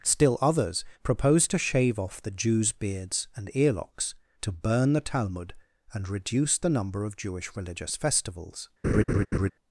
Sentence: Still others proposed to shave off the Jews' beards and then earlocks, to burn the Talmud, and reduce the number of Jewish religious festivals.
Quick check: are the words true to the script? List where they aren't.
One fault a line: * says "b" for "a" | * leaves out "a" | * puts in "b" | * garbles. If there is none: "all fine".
* leaves out "then"